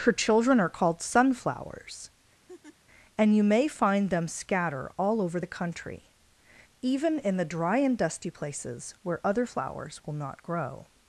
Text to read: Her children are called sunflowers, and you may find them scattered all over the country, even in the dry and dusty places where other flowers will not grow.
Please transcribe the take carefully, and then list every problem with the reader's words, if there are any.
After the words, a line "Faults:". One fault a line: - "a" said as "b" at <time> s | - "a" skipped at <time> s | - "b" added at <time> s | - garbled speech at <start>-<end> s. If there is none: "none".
Her children are called sunflowers, and you may find them scatter all over the country, even in the dry and dusty places where other flowers will not grow.
Faults:
- "scattered" said as "scatter" at 4.3 s